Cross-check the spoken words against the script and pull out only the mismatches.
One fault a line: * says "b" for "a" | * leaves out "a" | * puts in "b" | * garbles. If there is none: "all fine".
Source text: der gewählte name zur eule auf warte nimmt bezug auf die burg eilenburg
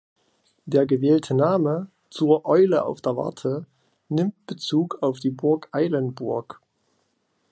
* puts in "der"